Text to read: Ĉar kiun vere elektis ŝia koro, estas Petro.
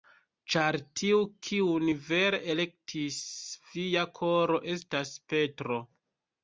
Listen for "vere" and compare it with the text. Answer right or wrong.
right